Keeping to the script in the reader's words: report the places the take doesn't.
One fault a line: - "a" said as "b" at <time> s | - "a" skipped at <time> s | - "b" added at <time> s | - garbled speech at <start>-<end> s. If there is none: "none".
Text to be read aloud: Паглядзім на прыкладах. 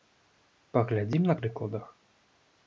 none